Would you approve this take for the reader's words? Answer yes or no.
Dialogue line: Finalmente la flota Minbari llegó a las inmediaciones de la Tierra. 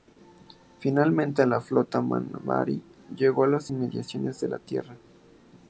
yes